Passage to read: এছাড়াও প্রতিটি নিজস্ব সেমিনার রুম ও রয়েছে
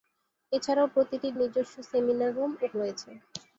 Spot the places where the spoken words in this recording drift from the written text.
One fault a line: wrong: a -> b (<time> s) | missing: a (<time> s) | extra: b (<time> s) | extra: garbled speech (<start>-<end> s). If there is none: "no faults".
no faults